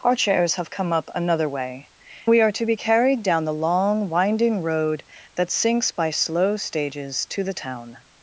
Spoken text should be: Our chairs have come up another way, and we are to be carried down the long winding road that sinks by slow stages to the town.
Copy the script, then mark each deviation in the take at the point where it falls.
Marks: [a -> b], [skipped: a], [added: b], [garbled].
Our chairs have come up another way, [skipped: and] we are to be carried down the long winding road that sinks by slow stages to the town.